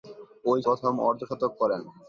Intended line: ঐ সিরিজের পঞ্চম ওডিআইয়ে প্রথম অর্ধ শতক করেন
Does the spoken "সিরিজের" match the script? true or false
false